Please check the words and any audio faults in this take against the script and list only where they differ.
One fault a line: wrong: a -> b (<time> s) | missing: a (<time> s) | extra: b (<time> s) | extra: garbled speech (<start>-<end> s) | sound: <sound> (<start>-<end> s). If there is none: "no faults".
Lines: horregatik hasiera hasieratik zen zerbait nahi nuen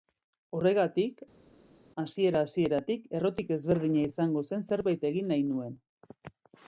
extra: errotik ezberdina izango (3.2 s)
extra: egin (5.1 s)